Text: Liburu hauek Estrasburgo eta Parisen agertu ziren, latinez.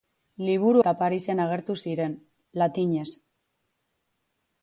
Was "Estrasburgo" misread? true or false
true